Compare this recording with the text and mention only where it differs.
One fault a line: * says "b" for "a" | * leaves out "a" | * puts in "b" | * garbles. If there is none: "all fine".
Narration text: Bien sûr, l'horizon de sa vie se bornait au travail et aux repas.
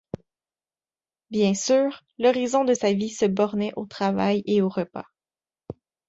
all fine